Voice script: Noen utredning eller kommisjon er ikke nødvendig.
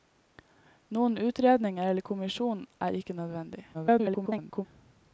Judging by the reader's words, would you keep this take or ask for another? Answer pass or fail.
fail